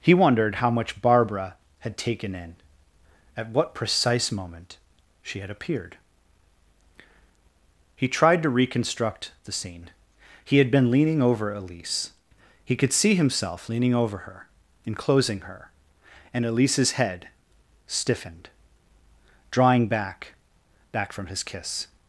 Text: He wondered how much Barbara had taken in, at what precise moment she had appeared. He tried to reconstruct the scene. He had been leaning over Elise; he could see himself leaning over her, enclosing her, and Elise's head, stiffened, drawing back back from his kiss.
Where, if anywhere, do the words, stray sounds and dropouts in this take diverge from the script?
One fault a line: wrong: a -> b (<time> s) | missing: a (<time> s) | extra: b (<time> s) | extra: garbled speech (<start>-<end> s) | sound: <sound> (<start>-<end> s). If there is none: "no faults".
no faults